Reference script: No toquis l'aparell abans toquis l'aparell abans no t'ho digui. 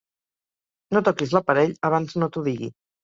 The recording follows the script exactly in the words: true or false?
false